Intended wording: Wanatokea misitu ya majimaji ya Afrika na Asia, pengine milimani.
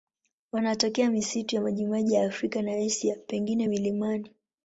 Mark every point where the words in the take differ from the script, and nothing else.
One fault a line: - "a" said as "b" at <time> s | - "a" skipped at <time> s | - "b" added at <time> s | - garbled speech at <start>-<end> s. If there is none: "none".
none